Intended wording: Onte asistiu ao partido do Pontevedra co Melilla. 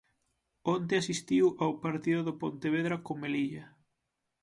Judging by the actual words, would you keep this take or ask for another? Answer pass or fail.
pass